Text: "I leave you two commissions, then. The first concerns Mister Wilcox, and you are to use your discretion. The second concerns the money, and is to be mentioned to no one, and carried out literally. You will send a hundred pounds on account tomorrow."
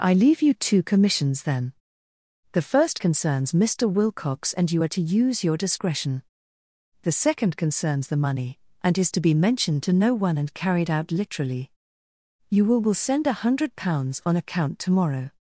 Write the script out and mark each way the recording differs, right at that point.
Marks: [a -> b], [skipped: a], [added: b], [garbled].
"I leave you two commissions, then. The first concerns Mister Wilcox, and you are to use your discretion. The second concerns the money, and is to be mentioned to no one, and carried out literally. You will [added: will] send a hundred pounds on account tomorrow."